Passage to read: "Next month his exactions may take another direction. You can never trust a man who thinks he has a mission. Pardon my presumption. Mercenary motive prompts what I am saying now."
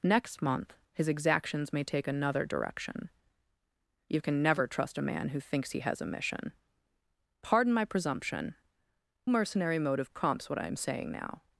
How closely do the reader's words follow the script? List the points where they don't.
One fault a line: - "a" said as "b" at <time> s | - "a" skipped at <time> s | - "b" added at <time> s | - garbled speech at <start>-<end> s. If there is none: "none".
none